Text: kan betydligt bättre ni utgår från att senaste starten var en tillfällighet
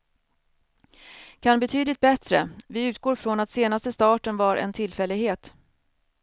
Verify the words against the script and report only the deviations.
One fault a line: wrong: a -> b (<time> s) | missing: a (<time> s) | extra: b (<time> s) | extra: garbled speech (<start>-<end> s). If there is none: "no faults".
wrong: ni -> vi (2.7 s)